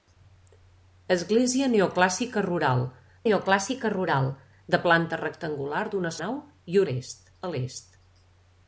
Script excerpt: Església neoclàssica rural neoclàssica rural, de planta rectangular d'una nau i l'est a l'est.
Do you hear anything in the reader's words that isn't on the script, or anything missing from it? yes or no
no